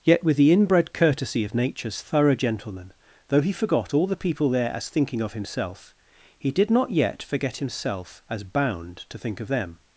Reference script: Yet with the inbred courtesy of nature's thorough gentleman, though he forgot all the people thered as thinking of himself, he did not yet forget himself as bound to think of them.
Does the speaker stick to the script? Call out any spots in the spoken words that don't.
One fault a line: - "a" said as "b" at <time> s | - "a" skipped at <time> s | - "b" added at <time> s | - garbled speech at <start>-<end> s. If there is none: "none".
- "thered" said as "there" at 4.5 s